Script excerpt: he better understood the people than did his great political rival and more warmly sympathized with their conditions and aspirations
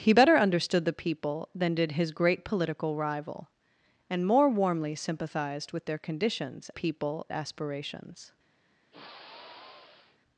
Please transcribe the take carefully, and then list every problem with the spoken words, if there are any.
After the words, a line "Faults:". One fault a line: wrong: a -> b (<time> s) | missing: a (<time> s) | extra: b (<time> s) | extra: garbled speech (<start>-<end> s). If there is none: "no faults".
he better understood the people than did his great political rival and more warmly sympathized with their conditions people aspirations
Faults:
wrong: and -> people (6.7 s)